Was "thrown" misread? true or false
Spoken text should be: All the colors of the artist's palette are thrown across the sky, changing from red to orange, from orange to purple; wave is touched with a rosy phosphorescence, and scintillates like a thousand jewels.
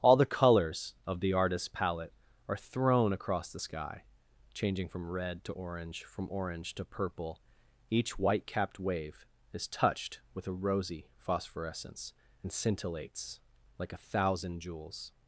false